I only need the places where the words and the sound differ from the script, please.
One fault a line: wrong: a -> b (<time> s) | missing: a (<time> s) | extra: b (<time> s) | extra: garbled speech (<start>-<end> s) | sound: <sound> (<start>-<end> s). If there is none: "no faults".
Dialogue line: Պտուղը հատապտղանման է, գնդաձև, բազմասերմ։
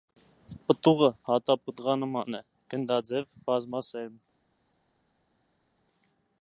no faults